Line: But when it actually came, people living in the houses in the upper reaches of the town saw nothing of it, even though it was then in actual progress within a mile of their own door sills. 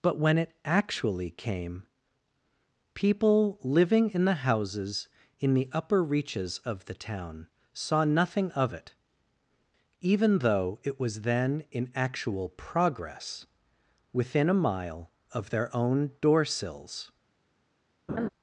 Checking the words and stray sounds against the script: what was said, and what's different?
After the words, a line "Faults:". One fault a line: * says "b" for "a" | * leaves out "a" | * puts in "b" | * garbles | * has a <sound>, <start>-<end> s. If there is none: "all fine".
But when it actually came, people living in the houses in the upper reaches of the town saw nothing of it, even though it was then in actual progress within a mile of their own door sills.
Faults:
* has a laugh, 18.1-18.3 s